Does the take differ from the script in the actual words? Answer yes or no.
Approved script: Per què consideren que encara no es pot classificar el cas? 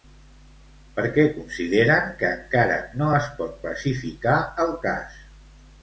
no